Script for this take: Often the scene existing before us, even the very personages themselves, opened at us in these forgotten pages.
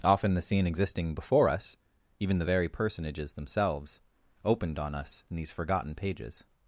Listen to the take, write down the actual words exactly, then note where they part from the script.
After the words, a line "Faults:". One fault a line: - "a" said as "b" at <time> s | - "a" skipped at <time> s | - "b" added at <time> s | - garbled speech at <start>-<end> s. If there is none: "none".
Often the scene existing before us, even the very personages themselves, opened on us in these forgotten pages.
Faults:
- "at" said as "on" at 4.8 s